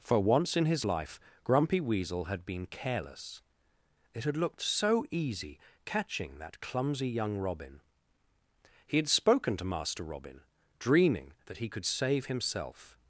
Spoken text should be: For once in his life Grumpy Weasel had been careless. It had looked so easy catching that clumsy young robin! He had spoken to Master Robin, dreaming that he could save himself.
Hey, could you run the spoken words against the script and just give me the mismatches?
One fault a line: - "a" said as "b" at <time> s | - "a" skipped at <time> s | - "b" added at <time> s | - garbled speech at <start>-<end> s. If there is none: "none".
none